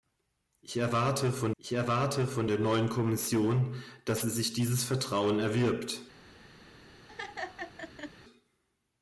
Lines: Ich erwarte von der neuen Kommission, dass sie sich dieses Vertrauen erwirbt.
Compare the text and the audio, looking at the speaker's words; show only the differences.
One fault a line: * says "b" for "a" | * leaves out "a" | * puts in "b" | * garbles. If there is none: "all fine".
* puts in "ich erwarte von"